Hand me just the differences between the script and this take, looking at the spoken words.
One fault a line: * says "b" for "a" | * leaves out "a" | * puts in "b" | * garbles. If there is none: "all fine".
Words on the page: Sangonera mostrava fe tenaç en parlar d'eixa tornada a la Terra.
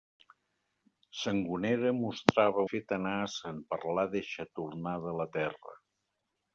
all fine